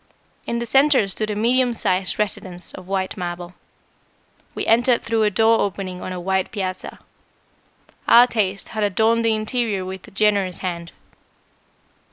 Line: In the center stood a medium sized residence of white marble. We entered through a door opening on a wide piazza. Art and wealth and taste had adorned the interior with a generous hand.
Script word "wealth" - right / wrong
wrong